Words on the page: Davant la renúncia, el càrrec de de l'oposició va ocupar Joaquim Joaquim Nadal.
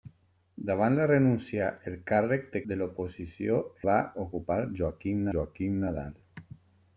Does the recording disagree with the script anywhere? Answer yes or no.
no